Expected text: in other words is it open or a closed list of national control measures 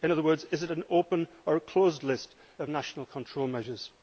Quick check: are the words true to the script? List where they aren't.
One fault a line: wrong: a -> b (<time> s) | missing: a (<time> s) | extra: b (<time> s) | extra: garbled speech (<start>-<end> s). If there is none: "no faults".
extra: an (0.7 s)